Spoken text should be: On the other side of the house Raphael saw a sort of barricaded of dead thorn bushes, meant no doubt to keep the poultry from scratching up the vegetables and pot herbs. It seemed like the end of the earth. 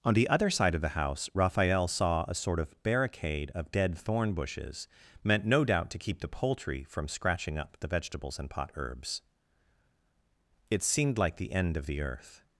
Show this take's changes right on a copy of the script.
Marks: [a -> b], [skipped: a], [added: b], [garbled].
On the other side of the house Raphael saw a sort of [barricaded -> barricade] of dead thorn bushes, meant no doubt to keep the poultry from scratching up the vegetables and pot herbs. It seemed like the end of the earth.